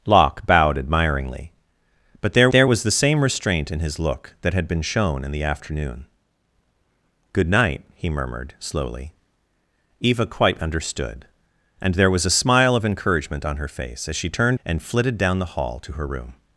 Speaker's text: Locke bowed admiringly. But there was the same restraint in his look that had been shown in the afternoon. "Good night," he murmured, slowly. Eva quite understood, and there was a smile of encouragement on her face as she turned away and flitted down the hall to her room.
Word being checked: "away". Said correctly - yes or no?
no